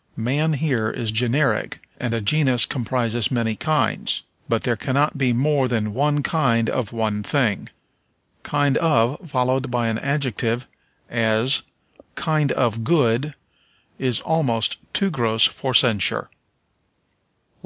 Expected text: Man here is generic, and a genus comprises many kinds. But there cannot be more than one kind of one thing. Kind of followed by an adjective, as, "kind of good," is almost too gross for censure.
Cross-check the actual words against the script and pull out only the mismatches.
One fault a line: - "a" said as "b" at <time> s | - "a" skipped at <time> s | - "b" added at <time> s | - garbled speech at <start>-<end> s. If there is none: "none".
none